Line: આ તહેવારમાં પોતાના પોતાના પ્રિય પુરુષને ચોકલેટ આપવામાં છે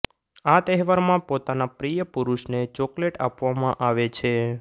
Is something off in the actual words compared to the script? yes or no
yes